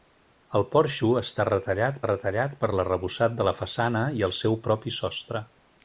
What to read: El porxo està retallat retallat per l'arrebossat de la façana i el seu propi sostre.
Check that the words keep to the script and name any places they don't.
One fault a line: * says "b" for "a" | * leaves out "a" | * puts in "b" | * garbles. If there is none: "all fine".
all fine